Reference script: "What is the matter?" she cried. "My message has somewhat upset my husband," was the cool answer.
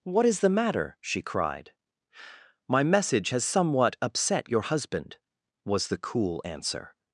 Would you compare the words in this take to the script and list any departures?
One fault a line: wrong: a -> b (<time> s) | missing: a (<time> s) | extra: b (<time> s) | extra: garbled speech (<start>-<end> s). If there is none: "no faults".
wrong: my -> your (4.5 s)